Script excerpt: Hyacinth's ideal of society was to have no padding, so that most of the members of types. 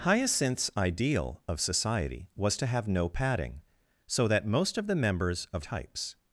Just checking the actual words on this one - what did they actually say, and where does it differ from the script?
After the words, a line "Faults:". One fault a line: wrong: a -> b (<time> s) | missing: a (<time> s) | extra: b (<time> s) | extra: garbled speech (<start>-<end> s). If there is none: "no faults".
Hyacinth's ideal of society was to have no padding, so that most of the members of types.
Faults:
no faults